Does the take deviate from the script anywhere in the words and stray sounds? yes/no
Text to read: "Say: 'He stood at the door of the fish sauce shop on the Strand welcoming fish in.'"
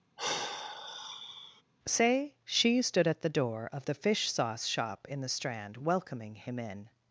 yes